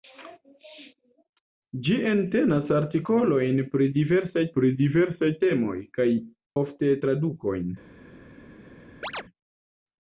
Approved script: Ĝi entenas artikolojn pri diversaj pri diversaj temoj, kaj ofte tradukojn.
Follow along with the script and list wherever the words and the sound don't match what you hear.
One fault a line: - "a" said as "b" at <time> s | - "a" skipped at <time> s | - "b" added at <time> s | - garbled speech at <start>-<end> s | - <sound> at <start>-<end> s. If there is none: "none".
- chirp at 9.0-9.2 s